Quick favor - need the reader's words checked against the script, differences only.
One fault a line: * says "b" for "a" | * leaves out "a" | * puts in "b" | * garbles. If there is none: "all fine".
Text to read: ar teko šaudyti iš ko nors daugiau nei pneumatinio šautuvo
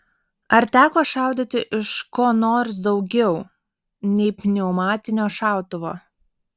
all fine